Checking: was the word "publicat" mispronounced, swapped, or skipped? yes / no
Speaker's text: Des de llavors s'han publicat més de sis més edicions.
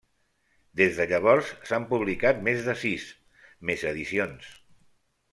no